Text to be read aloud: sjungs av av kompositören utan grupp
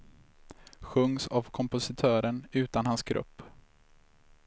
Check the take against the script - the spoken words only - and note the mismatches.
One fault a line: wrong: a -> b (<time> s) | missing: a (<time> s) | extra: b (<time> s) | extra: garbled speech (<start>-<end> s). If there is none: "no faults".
missing: av (1.5 s)
extra: hans (2.9 s)